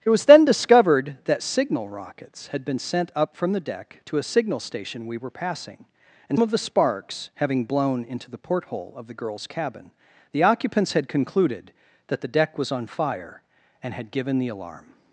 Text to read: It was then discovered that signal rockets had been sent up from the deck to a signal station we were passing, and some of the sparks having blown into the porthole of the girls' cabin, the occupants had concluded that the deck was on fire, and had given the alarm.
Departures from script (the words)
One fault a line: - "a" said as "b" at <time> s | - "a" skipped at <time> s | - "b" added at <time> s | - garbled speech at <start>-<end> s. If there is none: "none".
- "some" skipped at 6.4 s